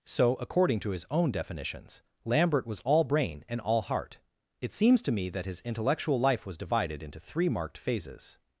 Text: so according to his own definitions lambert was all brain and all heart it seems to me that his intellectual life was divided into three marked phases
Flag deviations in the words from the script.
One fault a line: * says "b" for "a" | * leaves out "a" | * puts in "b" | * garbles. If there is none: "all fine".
all fine